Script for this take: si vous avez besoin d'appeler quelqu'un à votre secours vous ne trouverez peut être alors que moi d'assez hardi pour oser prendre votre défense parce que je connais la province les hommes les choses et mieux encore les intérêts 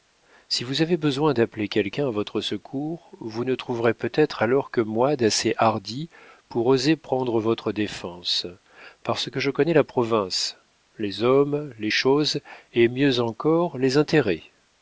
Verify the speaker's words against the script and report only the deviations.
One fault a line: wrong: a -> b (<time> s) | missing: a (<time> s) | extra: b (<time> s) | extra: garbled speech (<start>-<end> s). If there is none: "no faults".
no faults